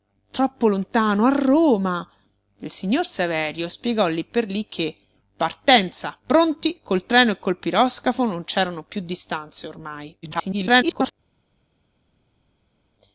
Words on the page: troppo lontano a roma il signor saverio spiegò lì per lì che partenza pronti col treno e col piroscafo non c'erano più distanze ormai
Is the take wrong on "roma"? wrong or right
right